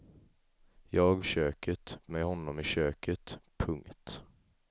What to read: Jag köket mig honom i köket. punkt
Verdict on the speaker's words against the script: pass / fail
pass